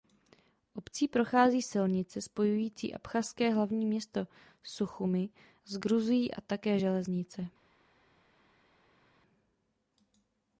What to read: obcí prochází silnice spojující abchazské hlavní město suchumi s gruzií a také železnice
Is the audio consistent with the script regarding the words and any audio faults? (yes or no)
yes